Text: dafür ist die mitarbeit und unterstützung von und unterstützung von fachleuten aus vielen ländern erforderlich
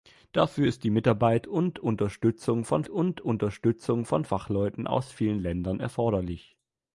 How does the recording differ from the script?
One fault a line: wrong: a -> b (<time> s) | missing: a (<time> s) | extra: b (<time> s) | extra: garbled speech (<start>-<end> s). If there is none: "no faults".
no faults